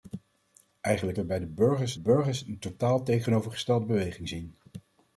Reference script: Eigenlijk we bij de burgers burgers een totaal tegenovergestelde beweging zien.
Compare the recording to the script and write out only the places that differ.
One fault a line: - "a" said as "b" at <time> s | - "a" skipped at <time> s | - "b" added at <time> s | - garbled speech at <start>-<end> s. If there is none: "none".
none